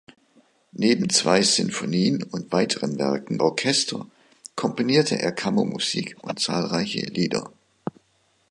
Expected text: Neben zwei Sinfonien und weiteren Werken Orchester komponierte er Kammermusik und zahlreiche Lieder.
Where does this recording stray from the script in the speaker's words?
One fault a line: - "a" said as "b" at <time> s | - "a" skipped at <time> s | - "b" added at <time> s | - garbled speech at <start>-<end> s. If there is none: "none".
none